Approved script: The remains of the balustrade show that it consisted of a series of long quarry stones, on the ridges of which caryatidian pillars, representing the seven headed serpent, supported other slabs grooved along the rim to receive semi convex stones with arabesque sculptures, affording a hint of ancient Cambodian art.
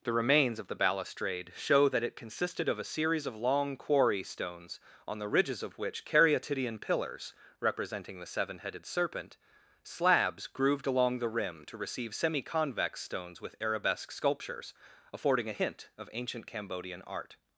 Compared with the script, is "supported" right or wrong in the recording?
wrong